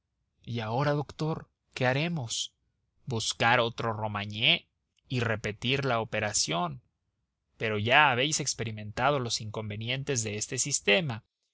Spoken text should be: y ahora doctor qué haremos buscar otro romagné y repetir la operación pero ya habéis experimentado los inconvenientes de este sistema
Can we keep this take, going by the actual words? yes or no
yes